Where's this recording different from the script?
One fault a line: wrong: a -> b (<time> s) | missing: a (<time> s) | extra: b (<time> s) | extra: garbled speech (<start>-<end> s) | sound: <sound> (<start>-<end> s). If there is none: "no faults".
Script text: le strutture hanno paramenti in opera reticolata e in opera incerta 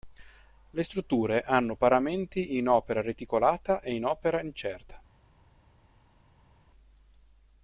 no faults